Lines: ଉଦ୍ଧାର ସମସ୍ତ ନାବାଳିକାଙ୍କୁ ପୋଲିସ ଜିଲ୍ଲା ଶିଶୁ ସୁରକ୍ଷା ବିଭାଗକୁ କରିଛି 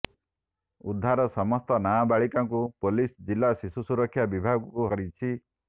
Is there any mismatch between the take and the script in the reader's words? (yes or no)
no